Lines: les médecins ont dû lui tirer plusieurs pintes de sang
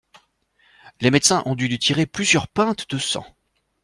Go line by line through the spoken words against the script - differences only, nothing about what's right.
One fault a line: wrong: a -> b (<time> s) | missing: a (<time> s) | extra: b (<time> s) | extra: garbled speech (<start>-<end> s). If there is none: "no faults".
no faults